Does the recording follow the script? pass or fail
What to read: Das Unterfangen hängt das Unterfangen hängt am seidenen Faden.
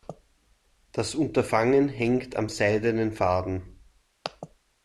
fail